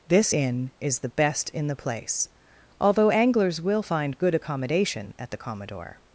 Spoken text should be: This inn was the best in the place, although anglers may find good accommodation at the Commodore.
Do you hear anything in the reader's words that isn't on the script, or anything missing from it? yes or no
yes